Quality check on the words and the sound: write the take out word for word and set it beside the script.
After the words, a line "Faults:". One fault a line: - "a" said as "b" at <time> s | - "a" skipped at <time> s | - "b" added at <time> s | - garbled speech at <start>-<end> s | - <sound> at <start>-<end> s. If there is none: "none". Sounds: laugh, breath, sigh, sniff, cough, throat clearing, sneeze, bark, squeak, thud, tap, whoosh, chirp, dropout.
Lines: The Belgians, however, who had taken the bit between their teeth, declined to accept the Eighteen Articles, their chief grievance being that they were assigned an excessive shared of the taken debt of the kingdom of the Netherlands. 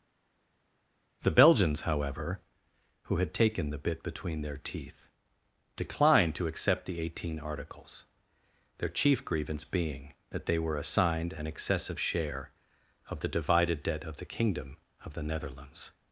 The Belgians, however, who had taken the bit between their teeth, declined to accept the Eighteen Articles, their chief grievance being that they were assigned an excessive share of the divided debt of the kingdom of the Netherlands.
Faults:
- "shared" said as "share" at 12.0 s
- "taken" said as "divided" at 13.3 s